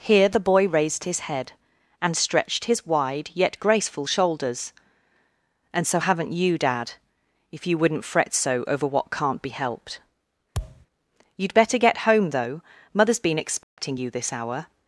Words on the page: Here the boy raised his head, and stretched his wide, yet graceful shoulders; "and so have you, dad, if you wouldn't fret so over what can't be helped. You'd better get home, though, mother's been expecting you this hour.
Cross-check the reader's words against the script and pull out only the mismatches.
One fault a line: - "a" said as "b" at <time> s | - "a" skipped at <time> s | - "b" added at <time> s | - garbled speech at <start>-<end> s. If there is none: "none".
- "have" said as "haven't" at 6.0 s